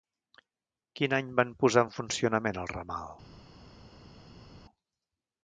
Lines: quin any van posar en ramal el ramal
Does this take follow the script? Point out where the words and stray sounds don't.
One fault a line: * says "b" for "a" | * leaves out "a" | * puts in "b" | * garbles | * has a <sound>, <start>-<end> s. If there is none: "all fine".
* says "funcionament" for "ramal"